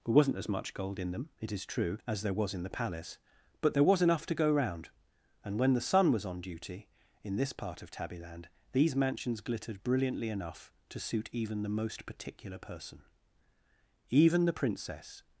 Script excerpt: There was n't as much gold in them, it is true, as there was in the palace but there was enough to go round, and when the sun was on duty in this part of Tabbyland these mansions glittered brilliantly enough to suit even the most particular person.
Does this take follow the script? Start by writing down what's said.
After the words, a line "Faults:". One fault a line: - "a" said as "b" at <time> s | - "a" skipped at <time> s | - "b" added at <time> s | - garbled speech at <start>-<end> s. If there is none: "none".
There was n't as much gold in them, it is true, as there was in the palace but there was enough to go round, and when the sun was on duty in this part of Tabbyland these mansions glittered brilliantly enough to suit even the most particular person. Even the Princess
Faults:
- "Even the Princess" added at 14.1 s